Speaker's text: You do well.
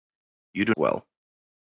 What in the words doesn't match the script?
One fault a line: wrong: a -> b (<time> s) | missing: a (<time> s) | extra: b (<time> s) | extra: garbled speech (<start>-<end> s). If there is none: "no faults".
no faults